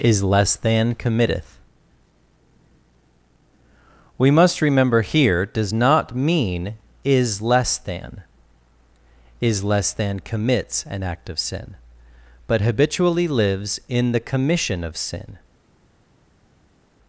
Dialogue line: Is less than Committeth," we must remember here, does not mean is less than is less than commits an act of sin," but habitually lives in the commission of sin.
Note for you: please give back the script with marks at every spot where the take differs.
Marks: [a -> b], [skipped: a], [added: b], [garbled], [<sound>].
Is less than Committeth," we must remember here, does not mean is less than is less than commits an act of sin," but habitually lives in the commission of sin.